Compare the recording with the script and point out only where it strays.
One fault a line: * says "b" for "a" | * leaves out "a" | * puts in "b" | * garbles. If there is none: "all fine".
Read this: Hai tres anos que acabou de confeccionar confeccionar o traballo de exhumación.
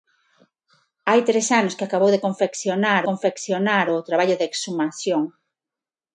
all fine